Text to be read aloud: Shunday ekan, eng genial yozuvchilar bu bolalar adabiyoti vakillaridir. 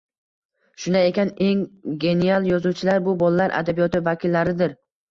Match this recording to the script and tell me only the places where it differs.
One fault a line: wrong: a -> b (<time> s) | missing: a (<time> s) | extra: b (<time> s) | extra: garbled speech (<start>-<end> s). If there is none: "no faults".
no faults